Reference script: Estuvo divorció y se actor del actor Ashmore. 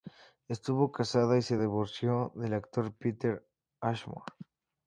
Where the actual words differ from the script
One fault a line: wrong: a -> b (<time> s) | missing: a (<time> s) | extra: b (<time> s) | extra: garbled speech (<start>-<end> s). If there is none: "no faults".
wrong: divorció -> casada (0.9 s)
wrong: actor -> divorció (1.6 s)
extra: Peter (2.9 s)